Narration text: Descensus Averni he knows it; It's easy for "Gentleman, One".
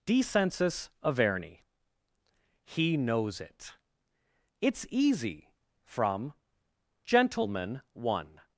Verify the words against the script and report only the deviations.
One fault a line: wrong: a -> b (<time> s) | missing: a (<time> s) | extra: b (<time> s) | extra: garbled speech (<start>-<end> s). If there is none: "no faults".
wrong: for -> from (5.8 s)